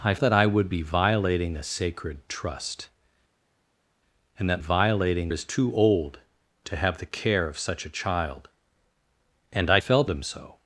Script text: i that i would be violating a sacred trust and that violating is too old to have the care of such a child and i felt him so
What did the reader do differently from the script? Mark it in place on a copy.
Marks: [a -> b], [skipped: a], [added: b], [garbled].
i that i would be violating a sacred trust and that violating is too old to have the care of such a child and i felt him so